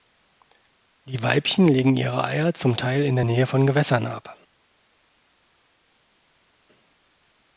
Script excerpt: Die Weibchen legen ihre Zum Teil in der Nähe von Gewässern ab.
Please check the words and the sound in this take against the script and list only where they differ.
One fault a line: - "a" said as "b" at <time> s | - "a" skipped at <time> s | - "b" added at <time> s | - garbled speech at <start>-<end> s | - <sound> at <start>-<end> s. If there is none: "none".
- "Eier" added at 2.2 s